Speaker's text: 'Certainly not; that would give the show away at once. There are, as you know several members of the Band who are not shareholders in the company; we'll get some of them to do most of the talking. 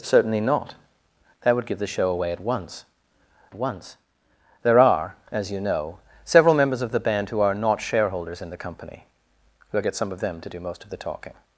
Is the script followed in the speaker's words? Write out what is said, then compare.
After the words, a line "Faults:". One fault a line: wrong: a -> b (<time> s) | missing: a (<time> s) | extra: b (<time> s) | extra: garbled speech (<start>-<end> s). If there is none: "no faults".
'Certainly not; that would give the show away at once once. There are, as you know several members of the Band who are not shareholders in the company; we'll get some of them to do most of the talking.
Faults:
extra: once (3.5 s)